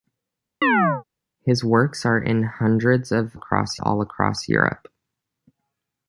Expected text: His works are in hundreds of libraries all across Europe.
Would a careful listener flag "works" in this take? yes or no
no